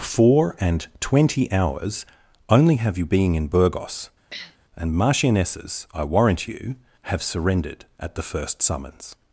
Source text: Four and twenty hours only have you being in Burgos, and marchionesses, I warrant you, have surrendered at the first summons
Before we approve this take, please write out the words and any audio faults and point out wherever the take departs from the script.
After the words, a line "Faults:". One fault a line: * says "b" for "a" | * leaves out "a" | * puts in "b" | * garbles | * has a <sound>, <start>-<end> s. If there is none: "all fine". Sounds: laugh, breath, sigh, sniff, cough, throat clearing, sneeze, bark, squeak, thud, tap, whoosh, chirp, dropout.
Four and twenty hours only have you being in Burgos, and marchionesses, I warrant you, have surrendered at the first summons
Faults:
* has a sniff, 4.3-4.6 s